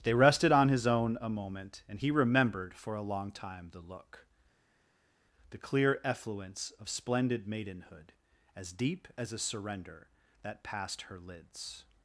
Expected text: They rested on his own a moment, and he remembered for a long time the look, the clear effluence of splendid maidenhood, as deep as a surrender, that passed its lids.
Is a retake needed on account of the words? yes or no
yes